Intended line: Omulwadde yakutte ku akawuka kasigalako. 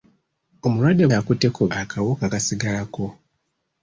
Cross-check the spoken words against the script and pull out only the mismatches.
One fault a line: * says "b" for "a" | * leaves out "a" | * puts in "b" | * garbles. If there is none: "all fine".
all fine